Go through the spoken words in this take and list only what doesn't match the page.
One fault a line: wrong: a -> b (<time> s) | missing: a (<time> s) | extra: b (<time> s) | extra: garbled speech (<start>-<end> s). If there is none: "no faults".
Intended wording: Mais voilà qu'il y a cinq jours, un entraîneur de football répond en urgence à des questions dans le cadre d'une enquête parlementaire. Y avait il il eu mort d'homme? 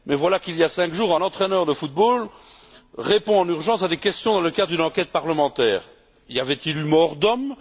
missing: il (6.8 s)